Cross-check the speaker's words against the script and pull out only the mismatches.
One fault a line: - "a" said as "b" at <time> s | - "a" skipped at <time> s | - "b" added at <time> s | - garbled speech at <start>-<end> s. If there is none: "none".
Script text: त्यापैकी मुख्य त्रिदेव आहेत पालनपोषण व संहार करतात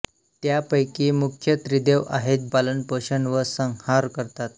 none